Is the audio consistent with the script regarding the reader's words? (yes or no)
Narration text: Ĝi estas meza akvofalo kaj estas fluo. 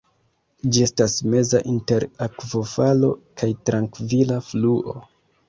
no